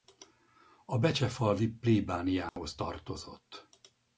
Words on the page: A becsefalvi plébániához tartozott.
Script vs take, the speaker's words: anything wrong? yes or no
no